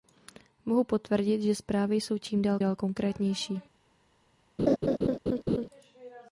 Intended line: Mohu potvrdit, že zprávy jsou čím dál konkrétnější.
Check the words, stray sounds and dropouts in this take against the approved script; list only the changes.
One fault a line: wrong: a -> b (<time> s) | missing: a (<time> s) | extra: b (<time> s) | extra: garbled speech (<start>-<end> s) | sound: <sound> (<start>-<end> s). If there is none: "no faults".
extra: dál (2.6 s)
sound: laugh (4.6-5.7 s)